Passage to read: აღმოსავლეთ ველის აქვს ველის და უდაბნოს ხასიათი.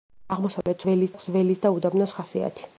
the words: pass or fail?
pass